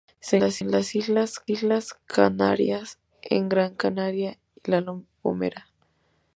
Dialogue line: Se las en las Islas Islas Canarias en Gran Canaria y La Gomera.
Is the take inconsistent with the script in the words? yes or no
no